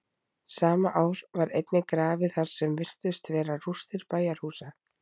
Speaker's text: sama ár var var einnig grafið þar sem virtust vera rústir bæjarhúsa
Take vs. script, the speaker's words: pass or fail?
fail